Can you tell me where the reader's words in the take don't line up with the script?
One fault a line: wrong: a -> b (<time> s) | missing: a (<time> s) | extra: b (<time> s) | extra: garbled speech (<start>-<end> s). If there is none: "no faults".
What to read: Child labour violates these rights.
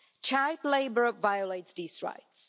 no faults